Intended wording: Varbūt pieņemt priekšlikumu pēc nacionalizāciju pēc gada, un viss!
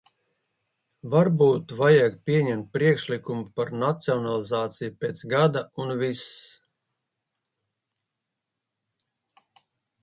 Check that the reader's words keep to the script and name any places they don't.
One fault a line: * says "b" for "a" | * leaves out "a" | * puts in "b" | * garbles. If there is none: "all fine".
* puts in "vajag"
* says "par" for "pēc"